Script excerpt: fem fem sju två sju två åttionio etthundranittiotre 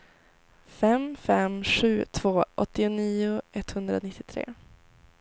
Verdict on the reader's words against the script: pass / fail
fail